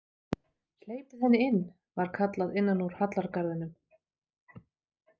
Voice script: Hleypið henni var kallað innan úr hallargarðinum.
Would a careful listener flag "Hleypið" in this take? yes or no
no